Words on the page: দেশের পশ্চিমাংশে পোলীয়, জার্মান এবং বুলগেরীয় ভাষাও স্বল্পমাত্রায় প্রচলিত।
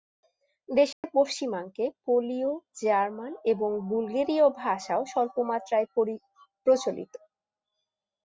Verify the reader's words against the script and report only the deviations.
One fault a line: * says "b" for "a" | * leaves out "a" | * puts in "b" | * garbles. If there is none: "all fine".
all fine